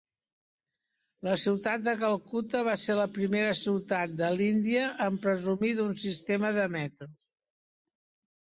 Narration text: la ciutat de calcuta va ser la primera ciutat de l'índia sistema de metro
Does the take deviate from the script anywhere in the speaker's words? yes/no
yes